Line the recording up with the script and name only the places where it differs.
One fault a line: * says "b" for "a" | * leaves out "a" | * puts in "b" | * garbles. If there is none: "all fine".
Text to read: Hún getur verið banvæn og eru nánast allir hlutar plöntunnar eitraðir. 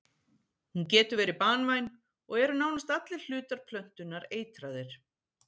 all fine